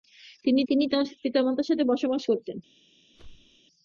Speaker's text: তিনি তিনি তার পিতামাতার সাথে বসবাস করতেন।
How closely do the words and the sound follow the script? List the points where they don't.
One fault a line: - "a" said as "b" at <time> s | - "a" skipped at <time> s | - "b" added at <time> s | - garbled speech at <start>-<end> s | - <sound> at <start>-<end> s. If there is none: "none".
- whoosh at 3.1-3.6 s